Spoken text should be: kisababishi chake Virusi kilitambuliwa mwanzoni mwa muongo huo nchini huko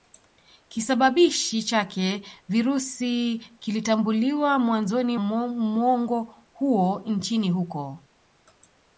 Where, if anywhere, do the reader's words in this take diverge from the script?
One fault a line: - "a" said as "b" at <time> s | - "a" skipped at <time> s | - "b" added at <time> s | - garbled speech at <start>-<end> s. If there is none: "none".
- "mwa" skipped at 5.2 s